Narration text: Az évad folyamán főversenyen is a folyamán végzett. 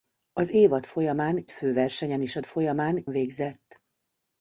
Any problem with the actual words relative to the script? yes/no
no